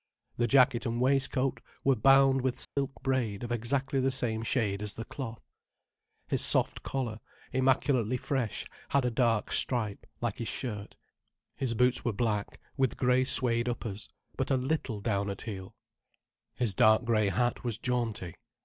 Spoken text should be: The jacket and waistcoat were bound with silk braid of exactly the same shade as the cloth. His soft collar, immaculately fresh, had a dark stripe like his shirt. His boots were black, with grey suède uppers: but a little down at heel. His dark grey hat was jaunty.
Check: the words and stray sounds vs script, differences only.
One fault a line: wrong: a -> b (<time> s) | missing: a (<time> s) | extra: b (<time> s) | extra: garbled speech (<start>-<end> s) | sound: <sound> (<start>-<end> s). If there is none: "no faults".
sound: dropout (2.6-2.8 s)